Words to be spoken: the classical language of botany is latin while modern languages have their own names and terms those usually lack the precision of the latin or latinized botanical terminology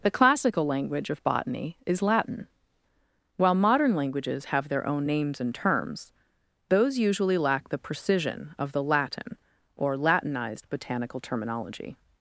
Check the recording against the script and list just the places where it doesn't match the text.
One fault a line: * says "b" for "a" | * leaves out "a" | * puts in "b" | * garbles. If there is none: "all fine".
all fine